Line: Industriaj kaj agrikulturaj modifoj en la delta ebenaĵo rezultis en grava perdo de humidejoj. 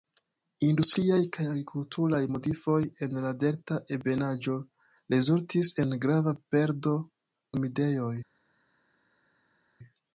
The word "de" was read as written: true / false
false